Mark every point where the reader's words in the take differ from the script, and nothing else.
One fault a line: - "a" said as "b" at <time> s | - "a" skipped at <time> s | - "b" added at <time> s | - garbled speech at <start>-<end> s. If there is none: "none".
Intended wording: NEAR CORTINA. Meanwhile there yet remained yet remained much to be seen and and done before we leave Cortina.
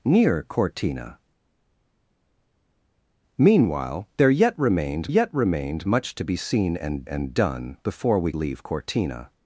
none